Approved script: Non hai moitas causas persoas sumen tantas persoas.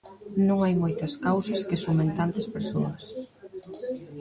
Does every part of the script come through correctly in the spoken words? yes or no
no